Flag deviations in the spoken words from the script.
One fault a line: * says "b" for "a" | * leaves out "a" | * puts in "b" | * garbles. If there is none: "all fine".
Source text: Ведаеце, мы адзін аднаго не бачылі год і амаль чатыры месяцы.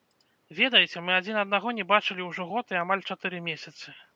* puts in "ўжо"